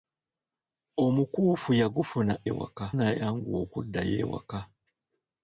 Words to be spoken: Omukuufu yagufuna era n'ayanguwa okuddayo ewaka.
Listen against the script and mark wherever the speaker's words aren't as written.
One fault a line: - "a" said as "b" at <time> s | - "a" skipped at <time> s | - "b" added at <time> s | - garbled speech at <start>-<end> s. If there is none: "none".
- "era" said as "ewaka" at 2.5 s